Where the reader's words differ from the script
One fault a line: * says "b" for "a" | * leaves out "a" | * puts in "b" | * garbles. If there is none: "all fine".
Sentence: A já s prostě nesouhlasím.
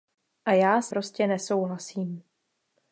all fine